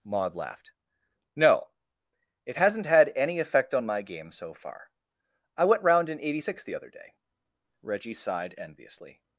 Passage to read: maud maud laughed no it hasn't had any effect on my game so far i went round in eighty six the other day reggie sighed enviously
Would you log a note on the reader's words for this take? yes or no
yes